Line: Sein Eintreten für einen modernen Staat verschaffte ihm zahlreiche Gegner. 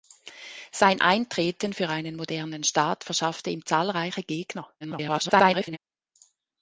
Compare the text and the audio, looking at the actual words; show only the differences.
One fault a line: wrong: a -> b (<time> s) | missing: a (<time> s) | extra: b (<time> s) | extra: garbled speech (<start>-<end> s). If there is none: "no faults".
extra: garbled speech (4.8-5.8 s)